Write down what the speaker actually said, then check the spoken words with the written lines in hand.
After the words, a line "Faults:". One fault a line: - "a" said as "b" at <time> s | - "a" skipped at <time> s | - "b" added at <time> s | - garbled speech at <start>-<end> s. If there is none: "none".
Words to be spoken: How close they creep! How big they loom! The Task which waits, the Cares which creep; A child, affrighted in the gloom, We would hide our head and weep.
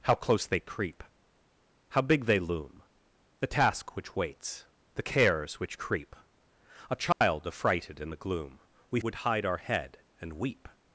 How close they creep! How big they loom! The Task which waits, the Cares which creep; A child, affrighted in the gloom, We would hide our head and weep.
Faults:
none